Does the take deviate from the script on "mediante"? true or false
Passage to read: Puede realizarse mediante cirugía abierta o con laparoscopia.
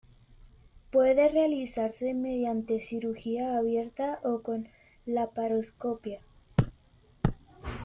false